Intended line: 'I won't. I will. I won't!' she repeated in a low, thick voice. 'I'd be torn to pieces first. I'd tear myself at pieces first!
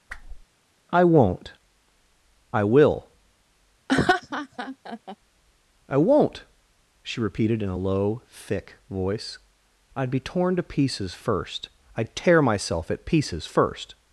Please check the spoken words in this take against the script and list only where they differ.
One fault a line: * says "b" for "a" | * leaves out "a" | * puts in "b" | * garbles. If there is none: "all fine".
all fine